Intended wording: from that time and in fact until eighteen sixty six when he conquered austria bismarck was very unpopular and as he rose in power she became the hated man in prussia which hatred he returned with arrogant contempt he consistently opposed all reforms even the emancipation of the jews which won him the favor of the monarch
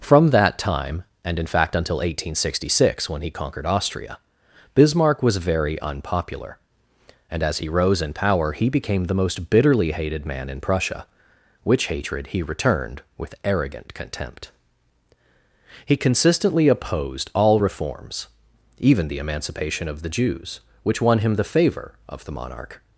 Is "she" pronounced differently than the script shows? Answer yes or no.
yes